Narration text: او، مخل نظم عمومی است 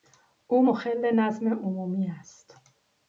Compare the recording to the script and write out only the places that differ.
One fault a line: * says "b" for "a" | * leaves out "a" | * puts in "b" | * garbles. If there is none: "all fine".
all fine